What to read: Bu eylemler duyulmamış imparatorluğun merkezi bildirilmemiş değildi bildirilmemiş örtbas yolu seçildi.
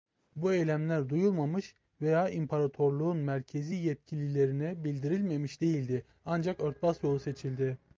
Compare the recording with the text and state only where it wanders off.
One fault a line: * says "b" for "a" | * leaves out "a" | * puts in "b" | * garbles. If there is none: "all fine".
* puts in "veya"
* puts in "yetkililerine"
* says "ancak" for "bildirilmemiş"